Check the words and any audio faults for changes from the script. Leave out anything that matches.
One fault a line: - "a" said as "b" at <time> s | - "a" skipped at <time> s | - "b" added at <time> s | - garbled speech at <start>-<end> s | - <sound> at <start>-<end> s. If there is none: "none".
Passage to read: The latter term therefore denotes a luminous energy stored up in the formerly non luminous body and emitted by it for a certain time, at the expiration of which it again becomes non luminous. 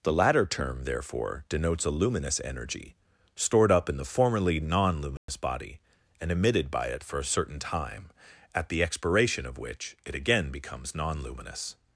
- dropout at 5.2-5.3 s